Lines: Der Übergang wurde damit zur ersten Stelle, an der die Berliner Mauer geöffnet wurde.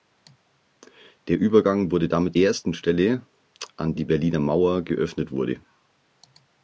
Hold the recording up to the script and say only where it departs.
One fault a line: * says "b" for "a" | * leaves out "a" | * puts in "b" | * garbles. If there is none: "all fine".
* leaves out "zur"
* leaves out "der"